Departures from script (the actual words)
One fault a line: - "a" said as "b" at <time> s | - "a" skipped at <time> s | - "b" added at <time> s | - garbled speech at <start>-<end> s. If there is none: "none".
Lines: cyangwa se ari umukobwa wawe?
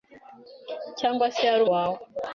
- "umukobwa" skipped at 1.6 s